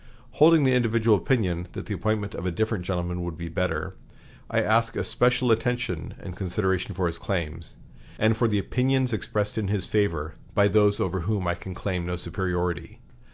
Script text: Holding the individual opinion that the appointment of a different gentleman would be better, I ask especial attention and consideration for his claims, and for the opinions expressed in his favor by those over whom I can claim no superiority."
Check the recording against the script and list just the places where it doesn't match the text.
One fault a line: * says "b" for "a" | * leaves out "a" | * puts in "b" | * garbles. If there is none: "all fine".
all fine